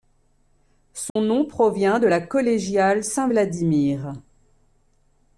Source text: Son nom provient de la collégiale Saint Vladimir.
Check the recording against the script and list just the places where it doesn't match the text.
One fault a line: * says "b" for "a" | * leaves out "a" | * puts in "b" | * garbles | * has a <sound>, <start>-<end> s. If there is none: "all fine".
* has a dropout, 1.1-1.2 s